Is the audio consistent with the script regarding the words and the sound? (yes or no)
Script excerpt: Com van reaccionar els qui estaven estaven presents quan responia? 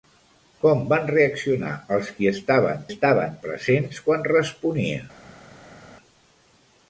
yes